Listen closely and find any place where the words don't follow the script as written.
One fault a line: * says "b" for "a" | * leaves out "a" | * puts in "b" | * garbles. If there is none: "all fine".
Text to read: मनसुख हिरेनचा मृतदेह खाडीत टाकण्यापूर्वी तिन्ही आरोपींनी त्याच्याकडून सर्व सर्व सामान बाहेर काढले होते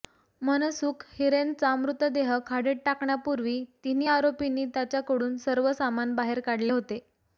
* leaves out "सर्व"